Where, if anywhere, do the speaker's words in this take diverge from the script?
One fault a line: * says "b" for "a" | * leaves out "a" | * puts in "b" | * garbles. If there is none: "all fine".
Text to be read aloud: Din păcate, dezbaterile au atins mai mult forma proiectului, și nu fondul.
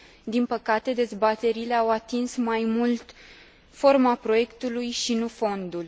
all fine